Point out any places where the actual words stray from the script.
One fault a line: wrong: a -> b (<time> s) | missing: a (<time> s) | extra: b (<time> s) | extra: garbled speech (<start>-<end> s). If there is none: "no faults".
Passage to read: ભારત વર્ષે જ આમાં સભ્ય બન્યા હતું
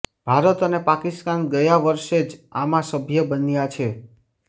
extra: અને પાકિસ્તાન ગયા (0.7 s)
wrong: હતું -> છે (3.7 s)